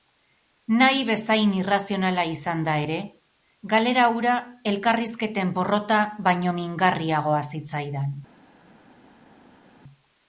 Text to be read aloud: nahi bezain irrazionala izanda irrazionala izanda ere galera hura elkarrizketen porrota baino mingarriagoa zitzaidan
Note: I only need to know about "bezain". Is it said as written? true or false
true